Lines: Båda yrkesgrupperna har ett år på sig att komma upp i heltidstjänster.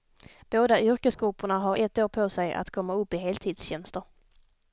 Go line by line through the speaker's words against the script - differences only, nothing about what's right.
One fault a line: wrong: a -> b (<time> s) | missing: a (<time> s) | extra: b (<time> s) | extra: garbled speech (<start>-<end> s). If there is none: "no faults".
no faults